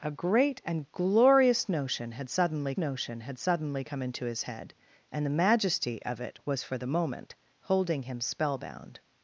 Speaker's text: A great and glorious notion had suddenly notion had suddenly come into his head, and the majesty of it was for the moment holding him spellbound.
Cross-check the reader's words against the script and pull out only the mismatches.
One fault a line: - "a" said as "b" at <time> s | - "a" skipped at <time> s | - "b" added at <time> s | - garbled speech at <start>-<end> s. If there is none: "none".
none